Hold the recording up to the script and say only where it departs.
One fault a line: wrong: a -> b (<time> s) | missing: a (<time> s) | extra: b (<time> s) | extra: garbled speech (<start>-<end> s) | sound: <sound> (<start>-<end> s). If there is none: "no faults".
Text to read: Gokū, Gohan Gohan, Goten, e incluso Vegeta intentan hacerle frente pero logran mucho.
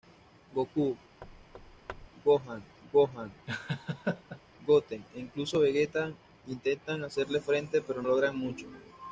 sound: thud (1.2-2.1 s)
sound: laugh (3.5-4.4 s)